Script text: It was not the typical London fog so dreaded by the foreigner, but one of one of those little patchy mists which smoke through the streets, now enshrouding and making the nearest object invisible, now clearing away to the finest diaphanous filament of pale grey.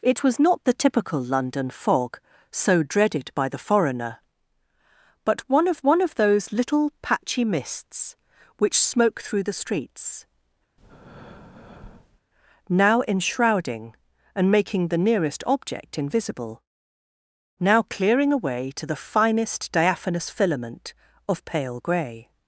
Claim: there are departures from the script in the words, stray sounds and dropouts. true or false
true